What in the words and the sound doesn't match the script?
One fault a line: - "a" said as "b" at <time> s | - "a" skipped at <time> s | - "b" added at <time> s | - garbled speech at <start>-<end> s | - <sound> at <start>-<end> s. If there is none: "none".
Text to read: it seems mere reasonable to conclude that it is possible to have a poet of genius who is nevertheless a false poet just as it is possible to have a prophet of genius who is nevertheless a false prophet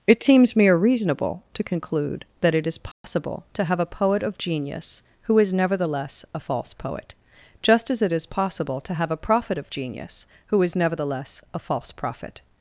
- dropout at 2.9-3.0 s